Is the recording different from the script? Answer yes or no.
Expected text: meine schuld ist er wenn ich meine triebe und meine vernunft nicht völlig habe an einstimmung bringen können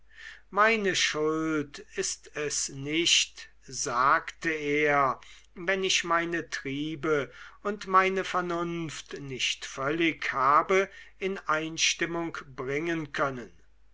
yes